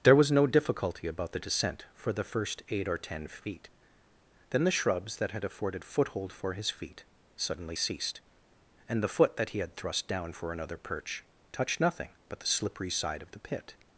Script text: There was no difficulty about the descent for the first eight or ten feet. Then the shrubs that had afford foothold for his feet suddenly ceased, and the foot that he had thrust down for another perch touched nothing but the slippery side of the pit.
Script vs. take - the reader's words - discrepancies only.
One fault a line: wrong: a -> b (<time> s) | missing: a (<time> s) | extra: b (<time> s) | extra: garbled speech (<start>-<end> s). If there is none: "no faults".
wrong: afford -> afforded (5.4 s)